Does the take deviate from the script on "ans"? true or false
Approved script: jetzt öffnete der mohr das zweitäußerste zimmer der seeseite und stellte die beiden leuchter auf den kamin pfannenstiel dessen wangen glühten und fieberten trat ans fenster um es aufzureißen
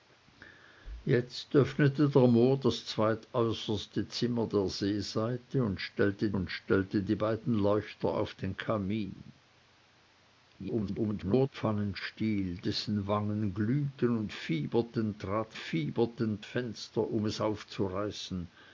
true